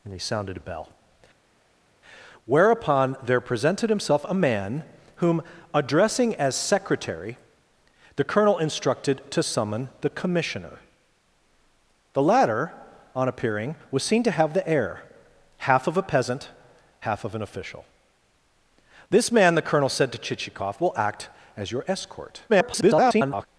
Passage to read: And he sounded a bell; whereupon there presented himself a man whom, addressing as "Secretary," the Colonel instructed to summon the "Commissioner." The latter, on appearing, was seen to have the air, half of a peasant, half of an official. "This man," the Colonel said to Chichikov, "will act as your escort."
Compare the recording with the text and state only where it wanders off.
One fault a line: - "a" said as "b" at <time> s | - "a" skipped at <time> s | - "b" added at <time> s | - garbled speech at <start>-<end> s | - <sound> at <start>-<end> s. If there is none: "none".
- garbled speech at 22.5-23.5 s